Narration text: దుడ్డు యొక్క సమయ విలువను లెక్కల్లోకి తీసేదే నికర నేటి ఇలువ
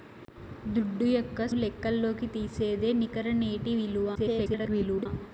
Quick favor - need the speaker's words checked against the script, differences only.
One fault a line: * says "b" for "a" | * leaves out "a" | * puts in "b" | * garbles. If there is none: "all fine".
* leaves out "సమయ విలువను"
* garbles